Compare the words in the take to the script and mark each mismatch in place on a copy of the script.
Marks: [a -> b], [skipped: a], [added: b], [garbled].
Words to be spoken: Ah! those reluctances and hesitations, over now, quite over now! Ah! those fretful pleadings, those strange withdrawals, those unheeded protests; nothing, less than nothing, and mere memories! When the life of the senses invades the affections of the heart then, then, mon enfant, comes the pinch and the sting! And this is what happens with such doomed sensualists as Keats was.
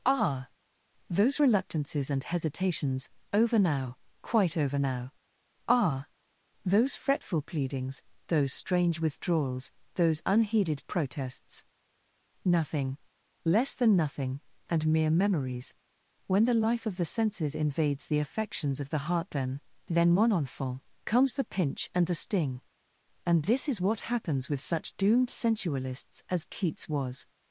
Ah! those reluctances and hesitations, over now, quite over now! Ah! those fretful pleadings, those strange withdrawals, those unheeded protests; nothing, less than nothing, and mere memories! When the life of the senses invades the affections of the heart then, then, mon enfant, comes the pinch and the sting! And this is what happens with such doomed sensualists as Keats was.